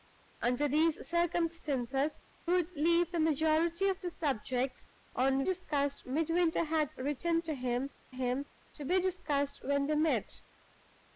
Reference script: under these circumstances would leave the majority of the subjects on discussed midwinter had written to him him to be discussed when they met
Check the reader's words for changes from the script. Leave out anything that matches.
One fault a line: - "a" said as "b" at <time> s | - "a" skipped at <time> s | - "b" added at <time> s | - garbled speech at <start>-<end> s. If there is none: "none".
none